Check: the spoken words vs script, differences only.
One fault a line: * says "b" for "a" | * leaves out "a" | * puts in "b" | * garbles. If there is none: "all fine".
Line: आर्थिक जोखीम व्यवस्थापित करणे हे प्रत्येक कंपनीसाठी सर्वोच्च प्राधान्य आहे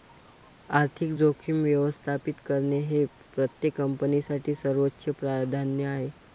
all fine